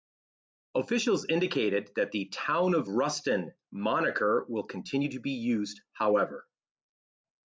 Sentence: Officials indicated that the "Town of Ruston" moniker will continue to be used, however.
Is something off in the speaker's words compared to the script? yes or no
no